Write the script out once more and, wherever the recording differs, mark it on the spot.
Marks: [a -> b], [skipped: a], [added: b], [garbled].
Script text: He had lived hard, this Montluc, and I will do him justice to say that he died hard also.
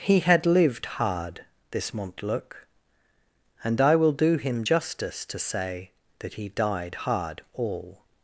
He had lived hard, this Montluc, and I will do him justice to say that he died hard [also. -> all]